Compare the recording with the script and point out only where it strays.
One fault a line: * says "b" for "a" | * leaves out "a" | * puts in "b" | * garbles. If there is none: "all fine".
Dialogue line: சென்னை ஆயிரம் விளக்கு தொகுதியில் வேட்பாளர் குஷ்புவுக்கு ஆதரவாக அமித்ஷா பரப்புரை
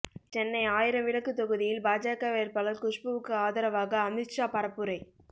* puts in "பாஜக"